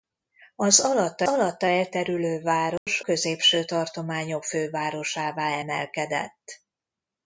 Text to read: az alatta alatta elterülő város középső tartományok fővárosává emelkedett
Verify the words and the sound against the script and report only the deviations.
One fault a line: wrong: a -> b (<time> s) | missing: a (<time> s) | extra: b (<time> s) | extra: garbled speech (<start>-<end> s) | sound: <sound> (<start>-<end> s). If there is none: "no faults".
sound: dropout (2.8-2.9 s)